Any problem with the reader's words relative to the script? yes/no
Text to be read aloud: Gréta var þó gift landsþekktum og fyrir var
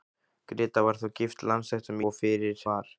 no